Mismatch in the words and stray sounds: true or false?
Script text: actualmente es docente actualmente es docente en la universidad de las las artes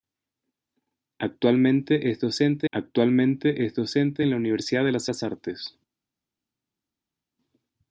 false